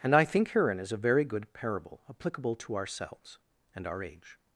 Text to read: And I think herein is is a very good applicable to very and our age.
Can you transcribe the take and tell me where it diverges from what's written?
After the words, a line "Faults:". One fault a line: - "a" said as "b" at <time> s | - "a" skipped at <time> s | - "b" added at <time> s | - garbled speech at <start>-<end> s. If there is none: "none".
And I think herein is a very good parable applicable to ourselves and our age.
Faults:
- "is" skipped at 0.9 s
- "parable" added at 1.5 s
- "very" said as "ourselves" at 2.8 s